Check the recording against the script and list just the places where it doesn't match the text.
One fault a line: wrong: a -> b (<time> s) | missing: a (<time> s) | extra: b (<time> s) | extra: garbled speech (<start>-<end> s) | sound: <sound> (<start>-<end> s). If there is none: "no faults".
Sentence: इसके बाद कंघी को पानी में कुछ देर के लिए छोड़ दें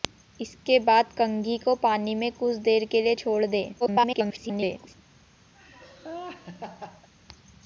extra: garbled speech (3.8-4.9 s)
sound: laugh (5.5-7.1 s)